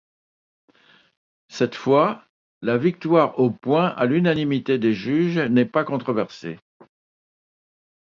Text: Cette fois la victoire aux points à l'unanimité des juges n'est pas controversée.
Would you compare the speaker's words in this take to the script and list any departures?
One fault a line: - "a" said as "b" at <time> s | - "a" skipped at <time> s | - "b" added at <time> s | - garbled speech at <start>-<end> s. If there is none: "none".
none